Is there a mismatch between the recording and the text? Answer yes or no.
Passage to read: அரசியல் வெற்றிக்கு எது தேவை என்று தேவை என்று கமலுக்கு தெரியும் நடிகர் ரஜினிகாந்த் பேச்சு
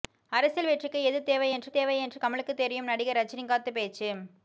no